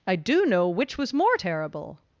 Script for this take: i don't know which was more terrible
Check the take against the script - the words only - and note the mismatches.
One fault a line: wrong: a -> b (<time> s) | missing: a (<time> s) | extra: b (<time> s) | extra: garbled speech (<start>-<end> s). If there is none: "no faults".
wrong: don't -> do (0.1 s)